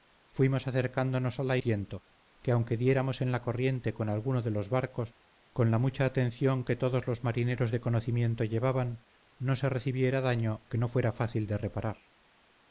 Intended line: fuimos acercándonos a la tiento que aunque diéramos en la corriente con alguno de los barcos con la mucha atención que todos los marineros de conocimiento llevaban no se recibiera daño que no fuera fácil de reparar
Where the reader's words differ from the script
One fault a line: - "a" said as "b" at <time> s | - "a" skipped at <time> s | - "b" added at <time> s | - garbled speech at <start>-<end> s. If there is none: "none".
none